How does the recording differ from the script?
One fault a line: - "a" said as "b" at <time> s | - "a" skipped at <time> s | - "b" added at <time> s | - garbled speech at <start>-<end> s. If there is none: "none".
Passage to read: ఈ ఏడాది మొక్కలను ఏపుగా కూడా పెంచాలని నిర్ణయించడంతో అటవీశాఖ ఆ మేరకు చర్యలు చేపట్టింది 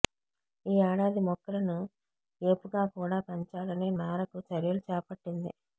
- "నిర్ణయించడంతో అటవీశాఖ ఆ" skipped at 3.9 s